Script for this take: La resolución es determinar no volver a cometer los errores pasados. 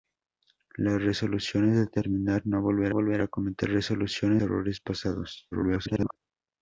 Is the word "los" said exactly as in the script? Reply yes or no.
no